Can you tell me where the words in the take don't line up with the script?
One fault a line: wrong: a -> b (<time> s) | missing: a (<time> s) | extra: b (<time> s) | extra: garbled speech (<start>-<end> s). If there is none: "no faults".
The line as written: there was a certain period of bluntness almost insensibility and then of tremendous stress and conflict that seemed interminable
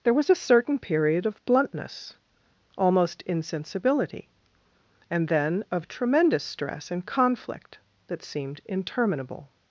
no faults